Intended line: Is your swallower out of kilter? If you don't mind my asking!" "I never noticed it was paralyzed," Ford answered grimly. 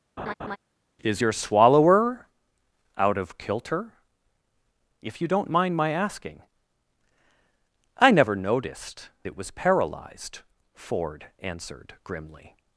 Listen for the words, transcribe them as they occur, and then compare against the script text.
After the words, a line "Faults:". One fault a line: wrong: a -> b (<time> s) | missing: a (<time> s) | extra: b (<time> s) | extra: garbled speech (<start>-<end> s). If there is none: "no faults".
Is your swallower out of kilter? If you don't mind my asking!" "I never noticed it was paralyzed," Ford answered grimly.
Faults:
no faults